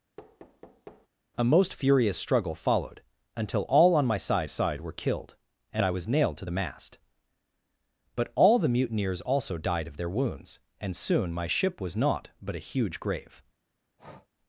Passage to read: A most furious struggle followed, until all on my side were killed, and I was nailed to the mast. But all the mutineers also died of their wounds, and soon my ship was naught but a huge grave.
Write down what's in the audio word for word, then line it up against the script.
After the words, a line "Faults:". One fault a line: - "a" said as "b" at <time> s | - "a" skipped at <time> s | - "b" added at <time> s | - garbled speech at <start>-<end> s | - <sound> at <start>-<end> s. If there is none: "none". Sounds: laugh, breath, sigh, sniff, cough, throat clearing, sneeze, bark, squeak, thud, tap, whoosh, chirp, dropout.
A most furious struggle followed, until all on my side side were killed, and I was nailed to the mast. But all the mutineers also died of their wounds, and soon my ship was naught but a huge grave.
Faults:
- thud at 0.2-1.1 s
- "side" added at 4.5 s
- breath at 14.0-14.3 s